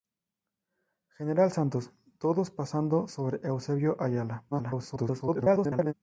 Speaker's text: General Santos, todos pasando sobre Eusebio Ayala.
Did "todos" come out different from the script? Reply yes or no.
no